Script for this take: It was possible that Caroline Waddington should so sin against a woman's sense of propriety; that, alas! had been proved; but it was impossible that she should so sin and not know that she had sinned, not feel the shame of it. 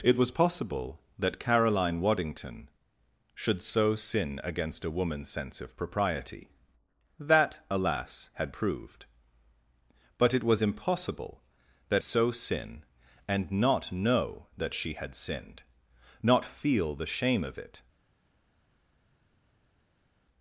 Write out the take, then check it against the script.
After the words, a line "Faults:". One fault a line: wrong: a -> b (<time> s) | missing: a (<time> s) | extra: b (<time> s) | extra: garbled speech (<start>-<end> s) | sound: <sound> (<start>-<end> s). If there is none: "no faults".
It was possible that Caroline Waddington should so sin against a woman's sense of propriety; that, alas! had proved; but it was impossible that so sin and not know that she had sinned, not feel the shame of it.
Faults:
missing: been (8.5 s)
missing: she should (12.1 s)